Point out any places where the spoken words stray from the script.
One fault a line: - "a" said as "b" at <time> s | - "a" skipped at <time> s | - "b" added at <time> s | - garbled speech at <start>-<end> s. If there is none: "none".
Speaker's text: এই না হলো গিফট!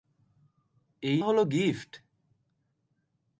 - "না" skipped at 1.2 s